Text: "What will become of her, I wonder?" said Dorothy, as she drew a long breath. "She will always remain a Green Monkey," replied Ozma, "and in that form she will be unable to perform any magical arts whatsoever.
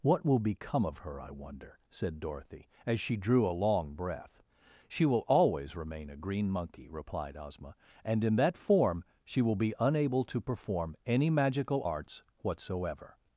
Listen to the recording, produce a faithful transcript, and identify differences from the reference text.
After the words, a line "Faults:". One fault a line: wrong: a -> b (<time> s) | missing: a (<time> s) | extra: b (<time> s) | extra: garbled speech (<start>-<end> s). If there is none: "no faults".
"What will become of her, I wonder?" said Dorothy, as she drew a long breath. "She will always remain a Green Monkey," replied Ozma, "and in that form she will be unable to perform any magical arts whatsoever.
Faults:
no faults